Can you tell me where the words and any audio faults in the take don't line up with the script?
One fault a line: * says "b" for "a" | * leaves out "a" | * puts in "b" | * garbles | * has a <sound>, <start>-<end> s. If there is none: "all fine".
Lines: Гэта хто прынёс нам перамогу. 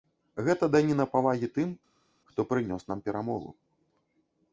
* puts in "даніна павагі тым"